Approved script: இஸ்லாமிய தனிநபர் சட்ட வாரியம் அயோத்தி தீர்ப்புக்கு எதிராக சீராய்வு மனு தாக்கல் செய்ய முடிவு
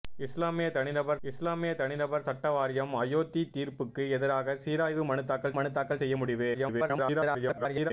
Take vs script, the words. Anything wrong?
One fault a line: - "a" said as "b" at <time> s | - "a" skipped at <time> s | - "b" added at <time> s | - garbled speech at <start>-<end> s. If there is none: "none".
- "இஸ்லாமிய தனிநபர்" added at 1.2 s
- "மனு தாக்கல்" added at 5.5 s
- garbled speech at 6.5-7.9 s